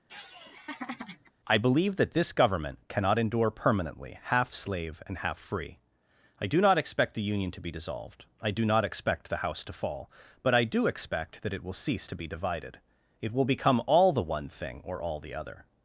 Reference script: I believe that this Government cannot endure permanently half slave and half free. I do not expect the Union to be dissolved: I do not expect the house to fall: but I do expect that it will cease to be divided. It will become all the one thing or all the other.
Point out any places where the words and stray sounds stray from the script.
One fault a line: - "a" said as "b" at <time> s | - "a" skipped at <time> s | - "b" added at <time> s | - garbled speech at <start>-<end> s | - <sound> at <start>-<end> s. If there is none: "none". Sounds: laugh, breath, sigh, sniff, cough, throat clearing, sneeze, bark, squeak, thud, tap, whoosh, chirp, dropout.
- laugh at 0.1-1.3 s